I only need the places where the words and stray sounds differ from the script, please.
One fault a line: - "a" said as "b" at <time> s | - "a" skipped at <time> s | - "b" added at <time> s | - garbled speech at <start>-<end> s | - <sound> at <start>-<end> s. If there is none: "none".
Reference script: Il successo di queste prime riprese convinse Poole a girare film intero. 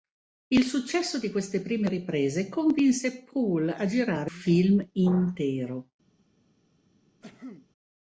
- cough at 7.2-7.7 s